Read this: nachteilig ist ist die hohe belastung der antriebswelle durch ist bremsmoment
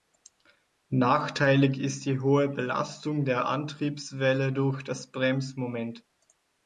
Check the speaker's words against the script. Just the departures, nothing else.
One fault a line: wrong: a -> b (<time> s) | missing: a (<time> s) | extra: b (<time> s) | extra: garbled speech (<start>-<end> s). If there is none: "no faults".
missing: ist (2.1 s)
wrong: ist -> das (4.8 s)